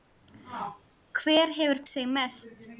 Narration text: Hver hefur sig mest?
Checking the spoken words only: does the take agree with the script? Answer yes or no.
yes